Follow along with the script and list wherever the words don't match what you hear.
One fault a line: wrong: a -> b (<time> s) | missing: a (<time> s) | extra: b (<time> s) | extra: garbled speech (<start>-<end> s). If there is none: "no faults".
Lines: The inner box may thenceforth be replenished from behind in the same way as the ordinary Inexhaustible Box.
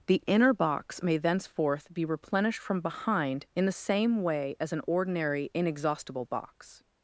wrong: the -> an (4.7 s)